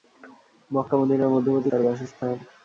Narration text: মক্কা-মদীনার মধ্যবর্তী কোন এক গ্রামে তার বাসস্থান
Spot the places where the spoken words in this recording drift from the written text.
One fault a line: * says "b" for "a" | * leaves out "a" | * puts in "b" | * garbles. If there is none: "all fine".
* leaves out "কোন এক গ্রামে"